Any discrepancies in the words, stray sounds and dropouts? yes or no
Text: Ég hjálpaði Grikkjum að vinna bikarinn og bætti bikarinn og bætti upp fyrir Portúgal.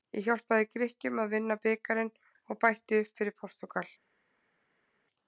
yes